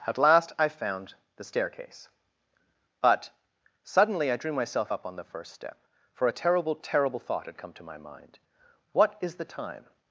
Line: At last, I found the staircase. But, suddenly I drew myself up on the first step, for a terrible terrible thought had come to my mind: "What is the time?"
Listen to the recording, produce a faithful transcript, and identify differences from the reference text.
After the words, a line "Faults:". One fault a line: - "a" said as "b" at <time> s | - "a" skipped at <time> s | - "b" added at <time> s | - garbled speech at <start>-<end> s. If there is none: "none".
At last, I found the staircase. But, suddenly I drew myself up on the first step, for a terrible terrible thought had come to my mind: "What is the time?"
Faults:
none